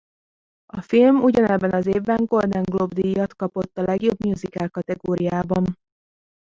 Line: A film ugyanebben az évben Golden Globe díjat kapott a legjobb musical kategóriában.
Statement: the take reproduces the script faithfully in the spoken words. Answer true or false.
true